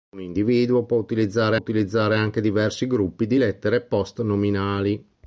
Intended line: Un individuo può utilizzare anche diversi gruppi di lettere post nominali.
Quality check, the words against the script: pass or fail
fail